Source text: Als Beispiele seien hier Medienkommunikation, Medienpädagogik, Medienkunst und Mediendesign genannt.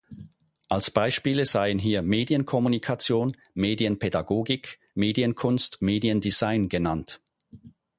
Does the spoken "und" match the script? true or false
false